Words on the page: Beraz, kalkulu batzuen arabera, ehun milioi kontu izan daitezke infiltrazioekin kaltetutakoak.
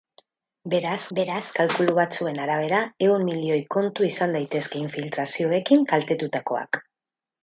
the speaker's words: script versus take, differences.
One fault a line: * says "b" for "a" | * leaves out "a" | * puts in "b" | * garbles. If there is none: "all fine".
* puts in "beraz"